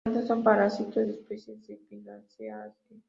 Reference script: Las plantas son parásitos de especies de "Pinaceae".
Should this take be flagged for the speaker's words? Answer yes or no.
no